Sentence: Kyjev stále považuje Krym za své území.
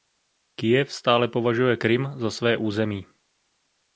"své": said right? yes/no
yes